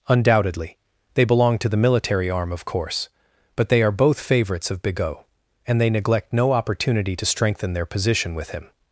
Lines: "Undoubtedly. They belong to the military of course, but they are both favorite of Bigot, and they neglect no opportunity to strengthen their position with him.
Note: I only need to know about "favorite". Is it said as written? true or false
false